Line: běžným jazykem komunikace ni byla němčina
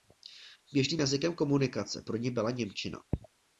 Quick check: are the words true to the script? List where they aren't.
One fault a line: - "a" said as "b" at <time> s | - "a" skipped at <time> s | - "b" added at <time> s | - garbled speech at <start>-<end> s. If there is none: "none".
- "pro" added at 2.0 s